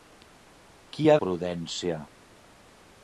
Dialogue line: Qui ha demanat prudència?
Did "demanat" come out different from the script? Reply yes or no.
yes